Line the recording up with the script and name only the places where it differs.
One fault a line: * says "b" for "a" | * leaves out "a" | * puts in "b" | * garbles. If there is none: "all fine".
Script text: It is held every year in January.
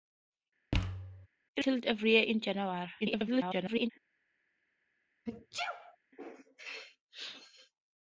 * leaves out "is"
* garbles